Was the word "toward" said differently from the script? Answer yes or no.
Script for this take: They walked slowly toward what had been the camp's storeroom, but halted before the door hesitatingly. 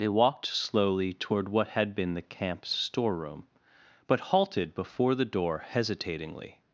no